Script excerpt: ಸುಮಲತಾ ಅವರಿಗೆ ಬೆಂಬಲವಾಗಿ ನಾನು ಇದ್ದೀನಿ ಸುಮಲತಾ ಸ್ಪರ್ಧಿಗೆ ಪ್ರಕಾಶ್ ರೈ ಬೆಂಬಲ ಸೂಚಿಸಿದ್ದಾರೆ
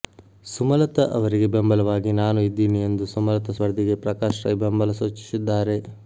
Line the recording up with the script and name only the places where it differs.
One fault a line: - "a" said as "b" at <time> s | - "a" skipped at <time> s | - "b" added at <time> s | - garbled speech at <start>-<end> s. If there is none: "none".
- "ಎಂದು" added at 2.9 s